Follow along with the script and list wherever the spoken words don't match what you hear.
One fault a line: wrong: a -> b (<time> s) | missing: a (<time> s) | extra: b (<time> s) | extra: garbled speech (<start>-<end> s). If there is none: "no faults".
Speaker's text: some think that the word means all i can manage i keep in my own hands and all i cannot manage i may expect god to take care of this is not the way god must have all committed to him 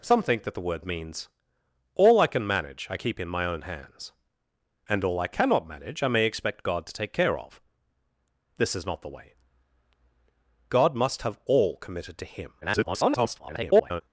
extra: garbled speech (12.6-14.0 s)